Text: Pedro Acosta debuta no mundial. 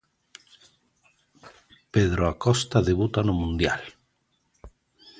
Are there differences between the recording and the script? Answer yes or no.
no